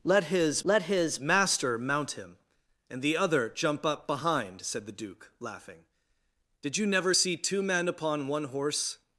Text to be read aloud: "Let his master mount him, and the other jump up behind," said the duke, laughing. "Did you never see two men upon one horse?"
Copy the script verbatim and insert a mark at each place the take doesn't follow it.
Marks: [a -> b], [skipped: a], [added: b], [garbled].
"Let his [added: let his] master mount him, and the other jump up behind," said the duke, laughing. "Did you never see two men upon one horse?"